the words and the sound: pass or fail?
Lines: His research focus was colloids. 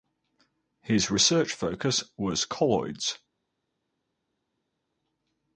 pass